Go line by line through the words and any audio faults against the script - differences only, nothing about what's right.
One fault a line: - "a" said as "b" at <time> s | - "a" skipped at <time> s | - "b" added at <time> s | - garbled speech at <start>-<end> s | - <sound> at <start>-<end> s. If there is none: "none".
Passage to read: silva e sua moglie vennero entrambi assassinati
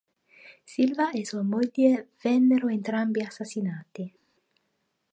none